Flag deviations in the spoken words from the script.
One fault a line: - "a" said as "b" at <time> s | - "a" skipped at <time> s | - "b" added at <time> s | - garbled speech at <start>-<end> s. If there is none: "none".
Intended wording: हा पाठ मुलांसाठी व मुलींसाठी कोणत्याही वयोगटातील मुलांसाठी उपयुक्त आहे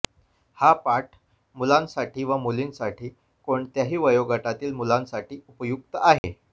none